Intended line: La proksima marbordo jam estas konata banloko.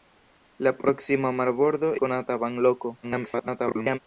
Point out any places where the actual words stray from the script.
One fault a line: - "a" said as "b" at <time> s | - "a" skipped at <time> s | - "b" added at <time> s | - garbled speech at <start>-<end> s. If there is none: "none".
- "jam estas" skipped at 1.9 s
- garbled speech at 3.0-4.0 s